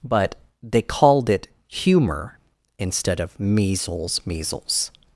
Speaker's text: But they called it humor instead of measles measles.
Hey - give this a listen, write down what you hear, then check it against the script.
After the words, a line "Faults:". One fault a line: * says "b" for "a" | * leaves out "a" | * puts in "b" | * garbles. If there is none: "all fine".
But they called it humor instead of measles measles.
Faults:
all fine